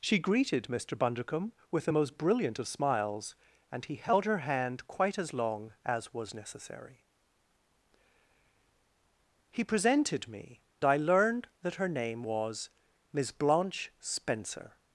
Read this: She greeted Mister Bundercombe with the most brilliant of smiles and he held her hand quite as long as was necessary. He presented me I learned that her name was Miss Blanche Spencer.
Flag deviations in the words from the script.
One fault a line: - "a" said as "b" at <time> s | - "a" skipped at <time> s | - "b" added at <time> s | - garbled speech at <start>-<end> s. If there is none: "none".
none